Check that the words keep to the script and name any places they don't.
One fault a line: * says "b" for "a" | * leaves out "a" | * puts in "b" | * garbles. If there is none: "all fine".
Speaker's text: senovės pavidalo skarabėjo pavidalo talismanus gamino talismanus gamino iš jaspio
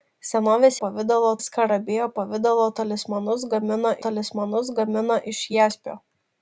all fine